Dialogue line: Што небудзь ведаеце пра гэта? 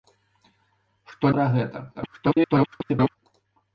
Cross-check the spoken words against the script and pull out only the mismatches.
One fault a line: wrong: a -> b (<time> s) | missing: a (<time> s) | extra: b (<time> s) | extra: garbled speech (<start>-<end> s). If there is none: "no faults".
missing: небудзь ведаеце (1.3 s)
extra: garbled speech (1.9-3.2 s)